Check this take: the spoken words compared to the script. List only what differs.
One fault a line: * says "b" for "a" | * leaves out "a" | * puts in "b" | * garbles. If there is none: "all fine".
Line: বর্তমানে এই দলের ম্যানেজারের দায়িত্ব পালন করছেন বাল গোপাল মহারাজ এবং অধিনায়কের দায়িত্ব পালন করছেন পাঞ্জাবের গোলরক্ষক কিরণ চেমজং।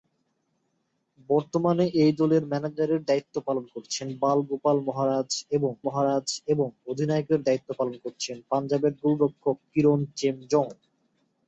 * puts in "মহারাজ এবং"